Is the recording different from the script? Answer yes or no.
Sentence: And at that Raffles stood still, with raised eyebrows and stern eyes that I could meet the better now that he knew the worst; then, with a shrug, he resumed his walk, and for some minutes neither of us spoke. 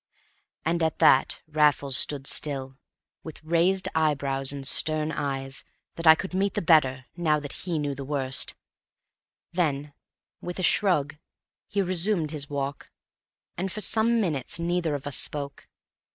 no